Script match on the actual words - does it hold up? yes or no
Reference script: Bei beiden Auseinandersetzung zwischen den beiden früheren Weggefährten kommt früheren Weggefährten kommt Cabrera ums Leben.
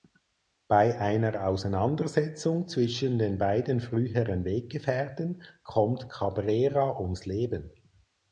no